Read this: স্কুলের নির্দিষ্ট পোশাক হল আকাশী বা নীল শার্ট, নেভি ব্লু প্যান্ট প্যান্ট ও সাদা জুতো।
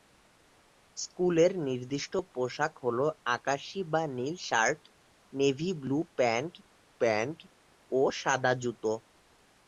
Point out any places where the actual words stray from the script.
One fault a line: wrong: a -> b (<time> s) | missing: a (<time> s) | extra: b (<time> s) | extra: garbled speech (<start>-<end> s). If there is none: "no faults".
no faults